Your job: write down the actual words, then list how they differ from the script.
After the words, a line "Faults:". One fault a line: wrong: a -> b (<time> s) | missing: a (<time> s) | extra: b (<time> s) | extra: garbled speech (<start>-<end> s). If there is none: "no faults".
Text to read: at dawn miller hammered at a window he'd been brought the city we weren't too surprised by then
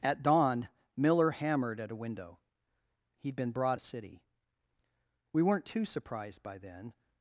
at dawn miller hammered at a window he'd been brought the city we weren't too surprised by then
Faults:
no faults